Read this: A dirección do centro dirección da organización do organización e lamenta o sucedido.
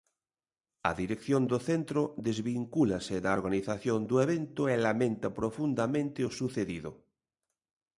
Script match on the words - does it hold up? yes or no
no